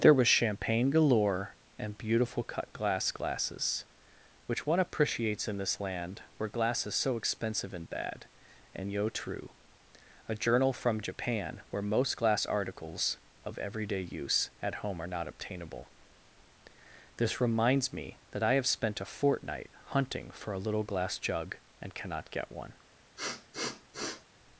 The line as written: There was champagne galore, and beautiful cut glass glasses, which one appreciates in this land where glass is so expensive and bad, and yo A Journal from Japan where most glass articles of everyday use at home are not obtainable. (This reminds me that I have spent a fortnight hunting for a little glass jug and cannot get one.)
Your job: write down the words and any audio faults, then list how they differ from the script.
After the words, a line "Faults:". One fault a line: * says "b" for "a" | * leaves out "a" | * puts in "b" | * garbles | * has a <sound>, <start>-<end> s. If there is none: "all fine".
There was champagne galore, and beautiful cut glass glasses, which one appreciates in this land where glass is so expensive and bad, and yo true A Journal from Japan where most glass articles of everyday use at home are not obtainable. (This reminds me that I have spent a fortnight hunting for a little glass jug and cannot get one.)
Faults:
* puts in "true"
* has a sniff, 23.2-24.3 s